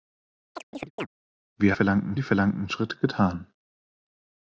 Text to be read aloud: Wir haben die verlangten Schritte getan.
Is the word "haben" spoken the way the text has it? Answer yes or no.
no